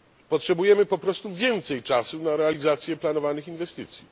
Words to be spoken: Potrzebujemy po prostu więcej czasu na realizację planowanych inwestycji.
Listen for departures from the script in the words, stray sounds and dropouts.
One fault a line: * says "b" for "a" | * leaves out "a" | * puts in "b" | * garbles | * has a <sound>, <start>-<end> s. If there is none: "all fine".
all fine